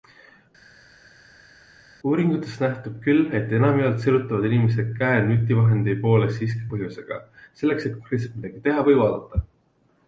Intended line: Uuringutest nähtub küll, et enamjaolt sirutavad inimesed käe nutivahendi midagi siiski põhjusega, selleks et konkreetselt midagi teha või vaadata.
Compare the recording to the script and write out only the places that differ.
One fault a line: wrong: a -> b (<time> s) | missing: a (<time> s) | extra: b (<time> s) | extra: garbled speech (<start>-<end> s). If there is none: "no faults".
wrong: midagi -> poole (6.0 s)